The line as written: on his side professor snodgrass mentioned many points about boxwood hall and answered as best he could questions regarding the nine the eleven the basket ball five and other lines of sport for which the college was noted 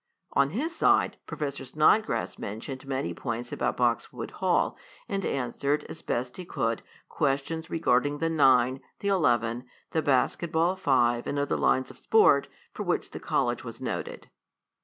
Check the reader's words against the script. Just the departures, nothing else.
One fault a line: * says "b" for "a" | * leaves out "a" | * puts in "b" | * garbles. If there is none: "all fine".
all fine